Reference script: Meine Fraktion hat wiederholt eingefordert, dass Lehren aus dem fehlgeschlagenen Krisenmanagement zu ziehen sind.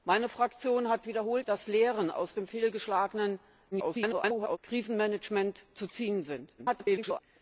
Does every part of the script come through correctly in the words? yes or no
no